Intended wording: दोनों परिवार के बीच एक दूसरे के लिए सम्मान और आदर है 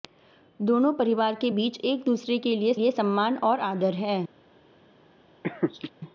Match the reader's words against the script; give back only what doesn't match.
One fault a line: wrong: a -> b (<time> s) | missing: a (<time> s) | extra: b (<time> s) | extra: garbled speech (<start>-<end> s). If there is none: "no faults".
extra: लिए (2.7 s)